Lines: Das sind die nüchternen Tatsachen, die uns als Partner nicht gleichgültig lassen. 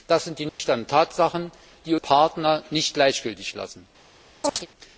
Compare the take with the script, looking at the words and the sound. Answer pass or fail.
fail